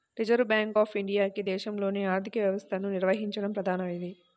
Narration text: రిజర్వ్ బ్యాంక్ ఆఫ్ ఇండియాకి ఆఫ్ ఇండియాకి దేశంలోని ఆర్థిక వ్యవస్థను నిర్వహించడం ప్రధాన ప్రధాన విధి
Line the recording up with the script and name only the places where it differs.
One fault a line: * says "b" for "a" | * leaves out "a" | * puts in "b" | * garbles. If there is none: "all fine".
* leaves out "ఆఫ్ ఇండియాకి"
* leaves out "ప్రధాన"